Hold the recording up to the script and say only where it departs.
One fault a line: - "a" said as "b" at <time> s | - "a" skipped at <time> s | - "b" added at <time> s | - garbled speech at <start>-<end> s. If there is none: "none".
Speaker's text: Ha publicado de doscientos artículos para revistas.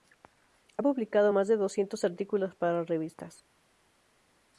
- "más" added at 1.3 s